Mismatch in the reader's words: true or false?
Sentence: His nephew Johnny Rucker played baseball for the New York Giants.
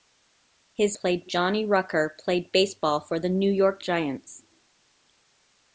true